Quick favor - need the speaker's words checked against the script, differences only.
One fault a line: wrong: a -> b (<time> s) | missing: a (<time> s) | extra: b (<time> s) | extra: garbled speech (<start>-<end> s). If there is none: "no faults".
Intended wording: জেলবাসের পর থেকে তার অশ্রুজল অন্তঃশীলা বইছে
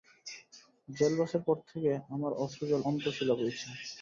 wrong: তার -> আমার (2.1 s)